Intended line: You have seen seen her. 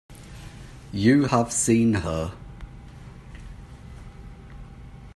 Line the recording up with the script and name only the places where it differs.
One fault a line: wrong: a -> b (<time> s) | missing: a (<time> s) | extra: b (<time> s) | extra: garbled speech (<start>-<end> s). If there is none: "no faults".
missing: seen (1.9 s)